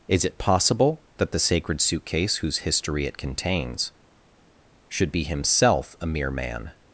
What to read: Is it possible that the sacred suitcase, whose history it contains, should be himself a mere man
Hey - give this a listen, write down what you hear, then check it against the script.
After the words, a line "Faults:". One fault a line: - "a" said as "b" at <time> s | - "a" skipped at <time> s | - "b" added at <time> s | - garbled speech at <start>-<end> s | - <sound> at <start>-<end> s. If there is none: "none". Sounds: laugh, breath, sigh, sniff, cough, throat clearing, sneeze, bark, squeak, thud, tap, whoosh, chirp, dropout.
Is it possible that the sacred suitcase, whose history it contains, should be himself a mere man
Faults:
none